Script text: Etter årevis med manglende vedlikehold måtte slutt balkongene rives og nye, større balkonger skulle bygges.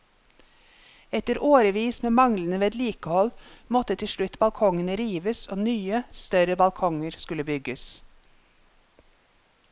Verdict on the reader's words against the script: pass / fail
fail